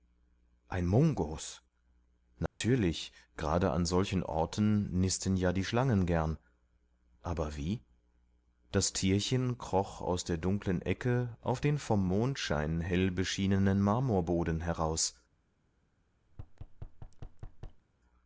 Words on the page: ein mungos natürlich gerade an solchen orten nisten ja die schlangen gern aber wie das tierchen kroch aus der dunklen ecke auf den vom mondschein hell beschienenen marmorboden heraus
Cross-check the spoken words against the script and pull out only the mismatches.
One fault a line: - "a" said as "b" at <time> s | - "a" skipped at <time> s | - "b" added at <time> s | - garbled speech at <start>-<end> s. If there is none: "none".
none